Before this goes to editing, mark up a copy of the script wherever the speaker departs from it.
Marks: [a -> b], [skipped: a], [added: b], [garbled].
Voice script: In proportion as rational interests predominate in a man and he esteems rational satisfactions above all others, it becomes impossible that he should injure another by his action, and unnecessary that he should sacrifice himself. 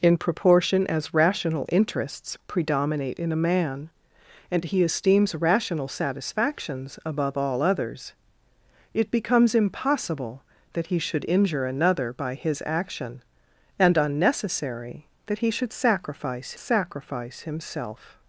In proportion as rational interests predominate in a man and he esteems rational satisfactions above all others, it becomes impossible that he should injure another by his action, and unnecessary that he should sacrifice [added: sacrifice] himself.